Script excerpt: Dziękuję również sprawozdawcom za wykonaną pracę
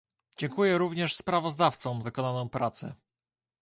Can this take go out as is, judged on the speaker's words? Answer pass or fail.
fail